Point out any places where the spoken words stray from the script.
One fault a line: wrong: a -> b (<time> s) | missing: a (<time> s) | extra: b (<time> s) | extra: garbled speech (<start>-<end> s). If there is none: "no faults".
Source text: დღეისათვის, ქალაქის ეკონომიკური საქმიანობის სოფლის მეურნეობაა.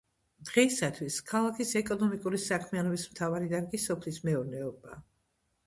extra: მთავარი დარგი (3.1 s)